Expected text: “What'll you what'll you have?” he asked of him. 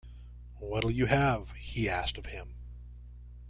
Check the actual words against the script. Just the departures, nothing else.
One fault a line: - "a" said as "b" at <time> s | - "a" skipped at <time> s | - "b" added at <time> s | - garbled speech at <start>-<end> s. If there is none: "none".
- "what'll you" skipped at 1.1 s